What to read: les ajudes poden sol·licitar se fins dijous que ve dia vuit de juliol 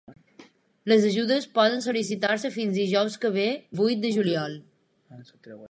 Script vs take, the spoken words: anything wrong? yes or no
yes